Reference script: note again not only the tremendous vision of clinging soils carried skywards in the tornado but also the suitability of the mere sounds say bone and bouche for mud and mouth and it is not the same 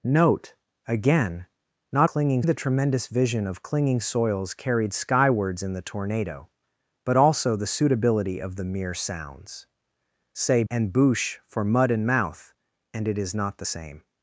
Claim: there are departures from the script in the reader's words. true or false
true